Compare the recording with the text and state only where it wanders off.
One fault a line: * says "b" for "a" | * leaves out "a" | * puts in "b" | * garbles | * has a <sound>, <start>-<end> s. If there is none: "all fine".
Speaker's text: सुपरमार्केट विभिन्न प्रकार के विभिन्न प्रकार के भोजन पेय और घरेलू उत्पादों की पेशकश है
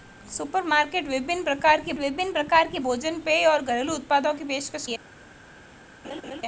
* has a laugh, 6.0-6.4 s